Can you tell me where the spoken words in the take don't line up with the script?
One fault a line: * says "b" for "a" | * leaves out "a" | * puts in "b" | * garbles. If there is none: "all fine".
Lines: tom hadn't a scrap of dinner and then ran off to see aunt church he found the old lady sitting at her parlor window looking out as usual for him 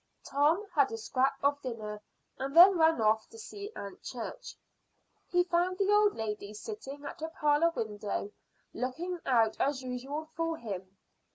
* says "had" for "hadn't"